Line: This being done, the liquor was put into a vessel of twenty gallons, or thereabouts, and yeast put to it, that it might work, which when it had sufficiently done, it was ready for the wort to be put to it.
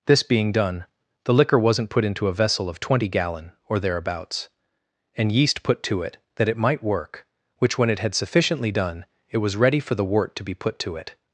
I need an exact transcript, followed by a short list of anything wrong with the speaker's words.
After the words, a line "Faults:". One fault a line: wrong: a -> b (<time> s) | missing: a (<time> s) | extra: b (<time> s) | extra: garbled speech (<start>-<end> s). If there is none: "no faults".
This being done, the liquor wasn't put into a vessel of twenty gallon, or thereabouts, and yeast put to it, that it might work, which when it had sufficiently done, it was ready for the wort to be put to it.
Faults:
wrong: was -> wasn't (1.6 s)
wrong: gallons -> gallon (3.1 s)